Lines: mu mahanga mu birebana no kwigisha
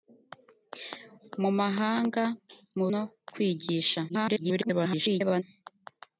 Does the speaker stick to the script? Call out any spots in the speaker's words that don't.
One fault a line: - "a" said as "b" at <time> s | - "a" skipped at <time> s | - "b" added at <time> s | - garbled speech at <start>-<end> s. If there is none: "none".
- "birebana" skipped at 2.9 s
- garbled speech at 4.1-5.4 s